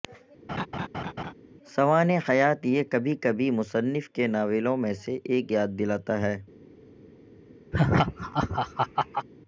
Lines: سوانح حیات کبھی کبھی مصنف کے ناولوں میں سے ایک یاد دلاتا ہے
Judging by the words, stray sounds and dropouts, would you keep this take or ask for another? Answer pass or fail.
fail